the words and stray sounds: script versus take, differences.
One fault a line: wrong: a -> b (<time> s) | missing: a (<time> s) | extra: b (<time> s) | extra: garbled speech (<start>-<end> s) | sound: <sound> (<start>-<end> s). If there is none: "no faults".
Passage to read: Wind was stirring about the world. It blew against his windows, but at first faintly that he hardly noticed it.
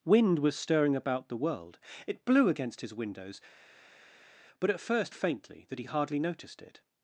no faults